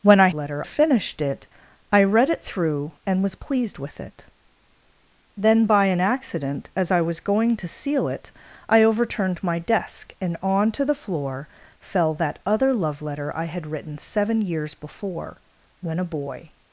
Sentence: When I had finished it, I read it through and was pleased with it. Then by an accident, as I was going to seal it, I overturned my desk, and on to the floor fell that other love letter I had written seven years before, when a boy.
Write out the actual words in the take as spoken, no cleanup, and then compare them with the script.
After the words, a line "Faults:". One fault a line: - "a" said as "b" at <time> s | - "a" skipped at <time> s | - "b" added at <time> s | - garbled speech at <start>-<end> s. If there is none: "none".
When I letter finished it, I read it through and was pleased with it. Then by an accident, as I was going to seal it, I overturned my desk, and on to the floor fell that other love letter I had written seven years before, when a boy.
Faults:
- "had" said as "letter" at 0.3 s